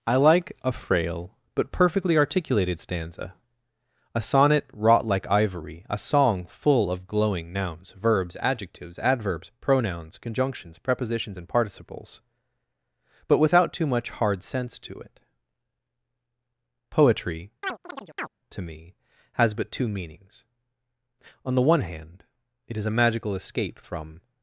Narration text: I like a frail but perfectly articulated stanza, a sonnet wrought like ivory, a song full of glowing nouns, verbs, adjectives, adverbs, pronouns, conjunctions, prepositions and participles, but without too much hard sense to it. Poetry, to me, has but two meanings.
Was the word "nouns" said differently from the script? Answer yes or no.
no